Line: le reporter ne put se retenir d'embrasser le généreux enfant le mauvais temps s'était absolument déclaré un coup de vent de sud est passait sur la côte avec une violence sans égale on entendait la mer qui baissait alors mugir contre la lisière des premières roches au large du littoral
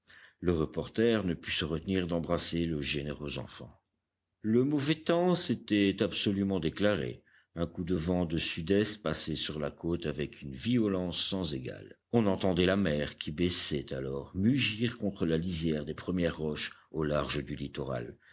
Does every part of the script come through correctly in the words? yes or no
yes